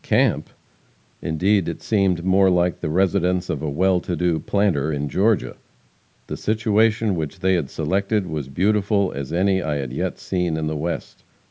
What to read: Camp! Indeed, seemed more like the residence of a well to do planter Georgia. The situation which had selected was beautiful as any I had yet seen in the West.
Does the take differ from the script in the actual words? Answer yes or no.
yes